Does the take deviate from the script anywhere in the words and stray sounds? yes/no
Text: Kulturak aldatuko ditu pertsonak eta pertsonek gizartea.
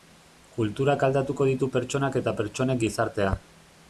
no